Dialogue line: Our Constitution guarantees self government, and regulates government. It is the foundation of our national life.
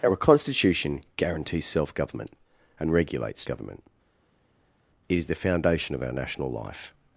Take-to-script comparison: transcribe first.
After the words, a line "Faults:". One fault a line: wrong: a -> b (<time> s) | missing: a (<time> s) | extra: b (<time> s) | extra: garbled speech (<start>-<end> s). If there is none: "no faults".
Our Constitution guarantees self government, and regulates government. It is the foundation of our national life.
Faults:
no faults